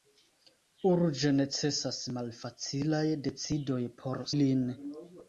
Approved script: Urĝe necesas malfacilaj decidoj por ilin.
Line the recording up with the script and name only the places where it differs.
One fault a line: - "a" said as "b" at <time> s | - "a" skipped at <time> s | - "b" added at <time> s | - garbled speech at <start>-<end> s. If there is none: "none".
none